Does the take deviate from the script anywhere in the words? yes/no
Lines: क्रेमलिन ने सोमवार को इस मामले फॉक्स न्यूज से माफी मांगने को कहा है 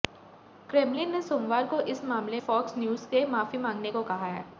no